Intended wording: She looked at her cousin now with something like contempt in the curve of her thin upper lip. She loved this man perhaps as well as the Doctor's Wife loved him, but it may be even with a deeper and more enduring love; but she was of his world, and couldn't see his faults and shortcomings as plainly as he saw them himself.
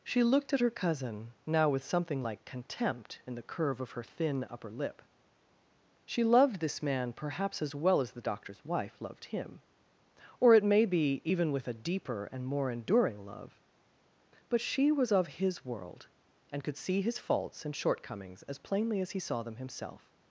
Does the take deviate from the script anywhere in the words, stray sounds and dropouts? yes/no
yes